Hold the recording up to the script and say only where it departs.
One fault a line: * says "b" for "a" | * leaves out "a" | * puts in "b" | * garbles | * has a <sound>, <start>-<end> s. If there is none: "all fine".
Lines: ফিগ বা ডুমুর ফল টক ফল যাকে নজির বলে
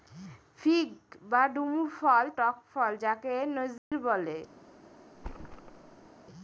* has a dropout, 3.8-3.9 s
* has a thud, 5.1-6.1 s